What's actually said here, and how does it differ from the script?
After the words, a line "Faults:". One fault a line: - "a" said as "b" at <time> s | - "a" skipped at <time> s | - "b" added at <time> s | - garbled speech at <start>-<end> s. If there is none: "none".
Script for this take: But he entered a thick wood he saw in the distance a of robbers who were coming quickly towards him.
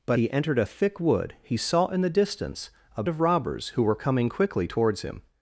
But he entered a thick wood he saw in the distance a of robbers who were coming quickly towards him.
Faults:
none